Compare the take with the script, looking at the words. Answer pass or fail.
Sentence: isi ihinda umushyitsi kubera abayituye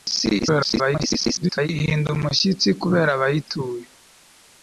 fail